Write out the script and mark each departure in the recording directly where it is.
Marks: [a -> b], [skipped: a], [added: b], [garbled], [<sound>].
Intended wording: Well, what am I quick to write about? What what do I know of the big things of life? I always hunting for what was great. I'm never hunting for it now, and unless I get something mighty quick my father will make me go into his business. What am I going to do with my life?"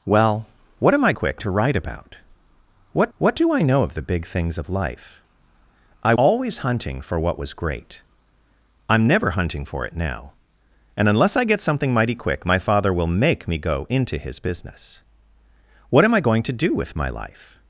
Well, what am I quick to write about? What what do I know of the big things of life? I always hunting for what was great. I'm never hunting for it now, and unless I get something mighty quick my father will make me go into his business. What am I going to do with my life?"